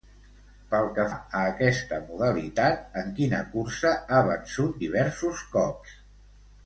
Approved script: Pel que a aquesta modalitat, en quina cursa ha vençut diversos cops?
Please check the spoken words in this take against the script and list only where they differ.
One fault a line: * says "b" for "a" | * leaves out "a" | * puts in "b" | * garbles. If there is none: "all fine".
all fine